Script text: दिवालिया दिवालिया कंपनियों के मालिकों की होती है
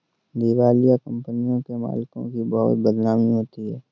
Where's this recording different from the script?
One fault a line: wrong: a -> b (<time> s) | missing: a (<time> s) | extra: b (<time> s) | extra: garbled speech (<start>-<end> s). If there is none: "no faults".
missing: दिवालिया (0.9 s)
extra: बहुत बदनामी (2.5 s)